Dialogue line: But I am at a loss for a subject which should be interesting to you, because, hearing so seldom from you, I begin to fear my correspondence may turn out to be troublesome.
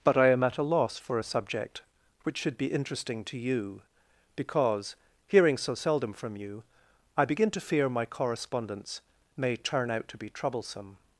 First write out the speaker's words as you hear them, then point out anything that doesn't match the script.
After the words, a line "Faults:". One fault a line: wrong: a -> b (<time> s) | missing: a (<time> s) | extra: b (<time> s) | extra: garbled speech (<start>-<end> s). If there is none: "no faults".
But I am at a loss for a subject which should be interesting to you, because, hearing so seldom from you, I begin to fear my correspondence may turn out to be troublesome.
Faults:
no faults